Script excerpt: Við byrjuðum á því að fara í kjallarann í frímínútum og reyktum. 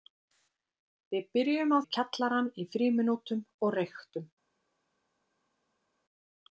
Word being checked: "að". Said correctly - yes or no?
no